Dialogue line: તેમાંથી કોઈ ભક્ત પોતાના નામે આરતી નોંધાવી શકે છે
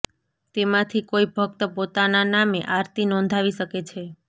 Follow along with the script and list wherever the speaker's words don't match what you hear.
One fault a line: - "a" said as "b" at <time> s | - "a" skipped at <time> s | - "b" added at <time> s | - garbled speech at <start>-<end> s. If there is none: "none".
none